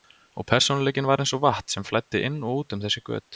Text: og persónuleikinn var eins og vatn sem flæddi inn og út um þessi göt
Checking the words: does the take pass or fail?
pass